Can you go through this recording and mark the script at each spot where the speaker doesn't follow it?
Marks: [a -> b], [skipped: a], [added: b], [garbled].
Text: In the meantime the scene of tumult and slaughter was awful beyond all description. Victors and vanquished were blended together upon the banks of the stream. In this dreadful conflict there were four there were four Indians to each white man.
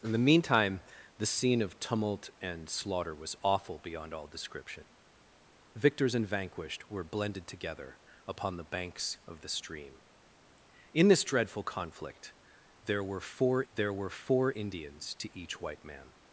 In the meantime the scene of tumult and slaughter was awful beyond all description. Victors and vanquished were blended together upon the banks of the stream. In this dreadful conflict there were four there were four Indians to each white man.